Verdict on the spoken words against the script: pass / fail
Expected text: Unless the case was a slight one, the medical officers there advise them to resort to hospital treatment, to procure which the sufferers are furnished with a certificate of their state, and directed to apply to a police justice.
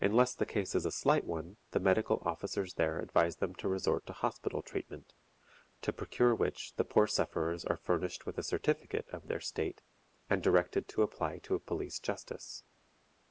fail